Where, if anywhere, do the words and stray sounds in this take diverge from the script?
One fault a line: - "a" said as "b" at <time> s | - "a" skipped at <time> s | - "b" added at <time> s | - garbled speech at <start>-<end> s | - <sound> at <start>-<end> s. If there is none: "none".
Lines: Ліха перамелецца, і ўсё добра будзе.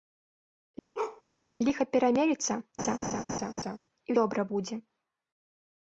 - bark at 0.9-1.2 s
- laugh at 2.8-3.8 s
- "ўсё" skipped at 4.2 s